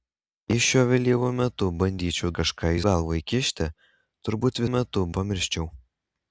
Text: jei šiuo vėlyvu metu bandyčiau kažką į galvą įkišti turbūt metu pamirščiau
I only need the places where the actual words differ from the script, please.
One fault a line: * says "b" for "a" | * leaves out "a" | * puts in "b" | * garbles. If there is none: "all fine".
all fine